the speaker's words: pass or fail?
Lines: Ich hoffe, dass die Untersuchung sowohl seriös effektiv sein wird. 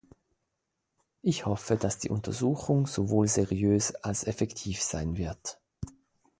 fail